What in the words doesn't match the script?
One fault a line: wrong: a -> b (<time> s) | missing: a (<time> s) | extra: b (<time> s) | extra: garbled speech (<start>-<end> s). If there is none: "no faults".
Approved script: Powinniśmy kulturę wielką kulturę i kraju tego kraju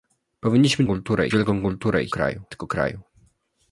no faults